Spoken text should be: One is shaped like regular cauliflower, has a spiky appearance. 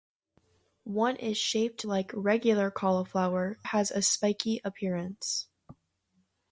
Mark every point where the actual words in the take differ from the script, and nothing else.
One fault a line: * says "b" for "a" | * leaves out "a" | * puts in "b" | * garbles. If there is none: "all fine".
all fine